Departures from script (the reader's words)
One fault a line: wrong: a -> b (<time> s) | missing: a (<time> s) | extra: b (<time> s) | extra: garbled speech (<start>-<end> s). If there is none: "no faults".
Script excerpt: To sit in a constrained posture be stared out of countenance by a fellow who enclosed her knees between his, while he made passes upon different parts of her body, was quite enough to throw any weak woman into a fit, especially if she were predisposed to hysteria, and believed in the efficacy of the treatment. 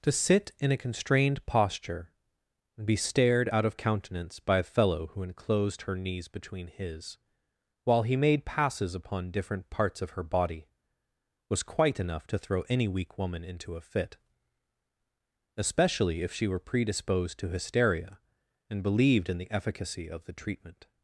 extra: and (2.8 s)